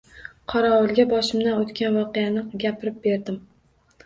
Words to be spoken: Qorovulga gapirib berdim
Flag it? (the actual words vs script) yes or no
yes